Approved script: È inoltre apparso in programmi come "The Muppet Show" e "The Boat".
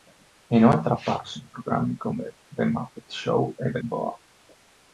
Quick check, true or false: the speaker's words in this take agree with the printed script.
true